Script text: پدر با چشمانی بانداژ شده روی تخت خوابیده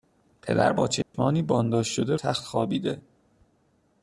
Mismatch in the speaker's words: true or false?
true